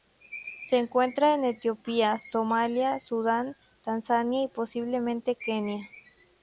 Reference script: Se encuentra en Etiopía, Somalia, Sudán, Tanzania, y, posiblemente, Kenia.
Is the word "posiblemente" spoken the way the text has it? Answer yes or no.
yes